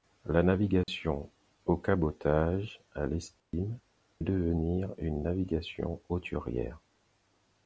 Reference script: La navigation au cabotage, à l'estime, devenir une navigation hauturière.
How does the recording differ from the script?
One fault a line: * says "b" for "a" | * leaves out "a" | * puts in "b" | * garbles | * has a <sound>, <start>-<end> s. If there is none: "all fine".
* has a dropout, 0.8-0.9 s
* has a dropout, 3.4-3.5 s